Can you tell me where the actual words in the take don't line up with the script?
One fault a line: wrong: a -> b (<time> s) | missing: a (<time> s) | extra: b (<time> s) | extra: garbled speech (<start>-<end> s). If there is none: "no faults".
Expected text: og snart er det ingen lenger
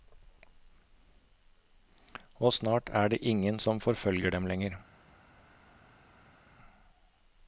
extra: som forfølger dem (3.6 s)